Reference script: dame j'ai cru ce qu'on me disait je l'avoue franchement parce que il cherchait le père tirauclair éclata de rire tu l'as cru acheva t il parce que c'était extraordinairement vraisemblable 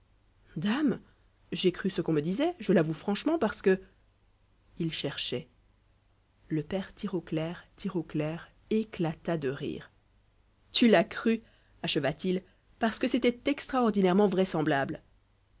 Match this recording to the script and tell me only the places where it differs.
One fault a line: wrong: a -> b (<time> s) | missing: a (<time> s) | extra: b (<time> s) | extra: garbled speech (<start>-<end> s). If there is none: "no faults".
extra: tirauclair (7.8 s)